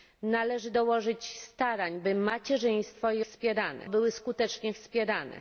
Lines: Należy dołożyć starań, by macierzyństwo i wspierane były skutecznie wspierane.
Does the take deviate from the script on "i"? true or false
false